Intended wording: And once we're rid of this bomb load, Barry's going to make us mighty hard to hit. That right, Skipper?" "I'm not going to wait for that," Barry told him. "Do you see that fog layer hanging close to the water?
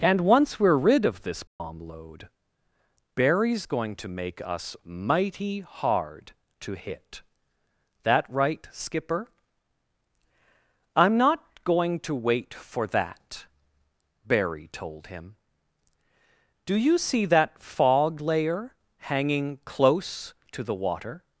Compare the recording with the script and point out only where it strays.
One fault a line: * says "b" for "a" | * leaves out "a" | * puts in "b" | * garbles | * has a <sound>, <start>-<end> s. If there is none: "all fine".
* has a dropout, 1.5-1.6 s